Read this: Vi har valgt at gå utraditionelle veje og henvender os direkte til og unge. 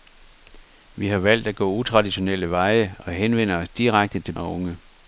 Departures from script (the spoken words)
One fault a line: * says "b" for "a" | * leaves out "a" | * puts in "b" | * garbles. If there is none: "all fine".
all fine